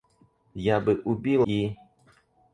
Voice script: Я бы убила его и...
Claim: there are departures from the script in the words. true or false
true